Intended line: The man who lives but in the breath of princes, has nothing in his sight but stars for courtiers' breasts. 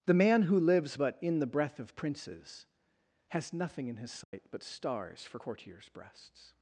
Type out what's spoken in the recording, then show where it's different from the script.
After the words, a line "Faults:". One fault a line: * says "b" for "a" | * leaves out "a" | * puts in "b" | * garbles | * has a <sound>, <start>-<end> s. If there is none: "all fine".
The man who lives but in the breath of princes, has nothing in his sight but stars for courtiers' breasts.
Faults:
* has a dropout, 4.2-4.3 s